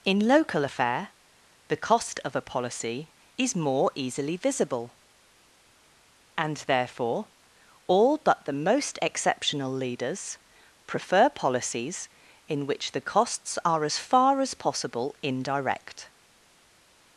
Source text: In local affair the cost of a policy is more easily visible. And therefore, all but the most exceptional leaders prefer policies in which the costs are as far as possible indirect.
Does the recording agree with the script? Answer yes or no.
yes